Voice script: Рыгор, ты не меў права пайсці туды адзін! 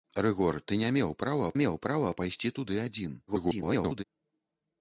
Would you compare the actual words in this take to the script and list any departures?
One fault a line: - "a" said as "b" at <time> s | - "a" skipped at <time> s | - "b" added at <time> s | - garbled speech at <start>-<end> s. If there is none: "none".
- "меў права" added at 1.6 s
- garbled speech at 3.3-4.0 s